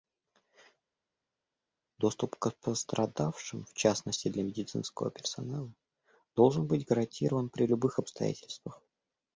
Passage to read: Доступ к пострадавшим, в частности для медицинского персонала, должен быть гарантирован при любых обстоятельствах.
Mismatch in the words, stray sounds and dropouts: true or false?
false